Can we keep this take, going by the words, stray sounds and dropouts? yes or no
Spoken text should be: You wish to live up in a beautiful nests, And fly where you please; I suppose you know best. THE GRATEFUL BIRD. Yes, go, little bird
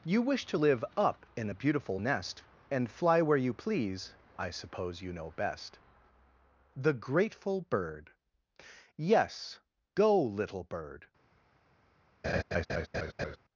no